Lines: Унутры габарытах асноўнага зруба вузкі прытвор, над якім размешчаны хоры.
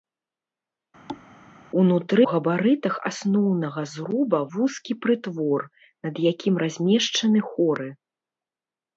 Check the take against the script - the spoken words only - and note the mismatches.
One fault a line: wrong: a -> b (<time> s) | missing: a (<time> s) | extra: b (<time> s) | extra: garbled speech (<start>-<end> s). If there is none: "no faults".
no faults